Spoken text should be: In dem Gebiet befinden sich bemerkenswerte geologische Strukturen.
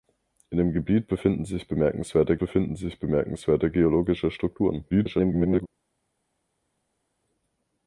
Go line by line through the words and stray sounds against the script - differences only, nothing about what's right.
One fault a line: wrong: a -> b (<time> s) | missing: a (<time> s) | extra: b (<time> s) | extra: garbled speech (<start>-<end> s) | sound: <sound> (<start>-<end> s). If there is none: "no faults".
extra: befinden sich bemerkenswerte (2.4 s)
extra: garbled speech (4.9-5.7 s)